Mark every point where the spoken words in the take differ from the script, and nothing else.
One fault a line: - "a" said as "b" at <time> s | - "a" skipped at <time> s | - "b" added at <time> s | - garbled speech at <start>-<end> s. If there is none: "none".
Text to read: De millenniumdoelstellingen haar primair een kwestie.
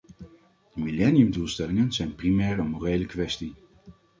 - "haar" said as "zijn" at 1.9 s
- "morele" added at 2.7 s